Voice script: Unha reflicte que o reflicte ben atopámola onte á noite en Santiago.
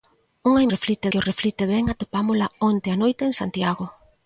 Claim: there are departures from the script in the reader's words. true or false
false